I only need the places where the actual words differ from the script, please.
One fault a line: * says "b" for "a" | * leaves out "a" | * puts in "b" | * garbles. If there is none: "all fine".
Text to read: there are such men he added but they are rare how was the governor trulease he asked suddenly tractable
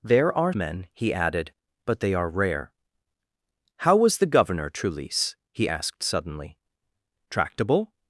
* leaves out "such"